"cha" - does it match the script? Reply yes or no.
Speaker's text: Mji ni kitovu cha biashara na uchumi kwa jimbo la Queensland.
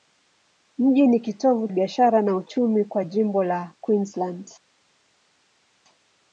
no